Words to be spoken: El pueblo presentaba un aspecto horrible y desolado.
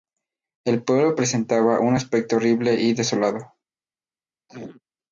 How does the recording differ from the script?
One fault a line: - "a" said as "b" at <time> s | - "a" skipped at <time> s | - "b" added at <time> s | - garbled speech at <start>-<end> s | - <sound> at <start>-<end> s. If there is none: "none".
- throat clearing at 4.5-4.8 s